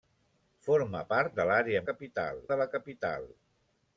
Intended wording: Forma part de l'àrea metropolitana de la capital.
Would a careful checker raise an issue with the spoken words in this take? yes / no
yes